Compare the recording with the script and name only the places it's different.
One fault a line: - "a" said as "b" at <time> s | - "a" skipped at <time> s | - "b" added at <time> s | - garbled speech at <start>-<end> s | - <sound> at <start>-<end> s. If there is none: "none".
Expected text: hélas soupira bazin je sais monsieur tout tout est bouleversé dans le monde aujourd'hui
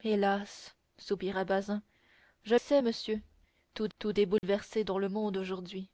- dropout at 4.4-4.4 s